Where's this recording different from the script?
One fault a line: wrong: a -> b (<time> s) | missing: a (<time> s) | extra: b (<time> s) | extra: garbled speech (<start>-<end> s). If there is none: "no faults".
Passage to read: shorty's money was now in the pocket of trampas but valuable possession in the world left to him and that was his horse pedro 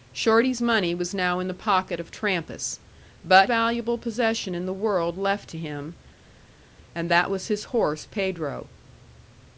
no faults